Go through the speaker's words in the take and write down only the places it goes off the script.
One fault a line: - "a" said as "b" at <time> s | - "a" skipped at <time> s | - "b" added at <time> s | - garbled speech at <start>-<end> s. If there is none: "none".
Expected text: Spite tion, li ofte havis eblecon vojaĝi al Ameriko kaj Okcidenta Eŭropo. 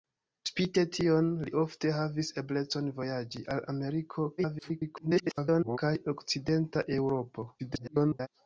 - garbled speech at 4.4-5.8 s
- garbled speech at 7.6-8.3 s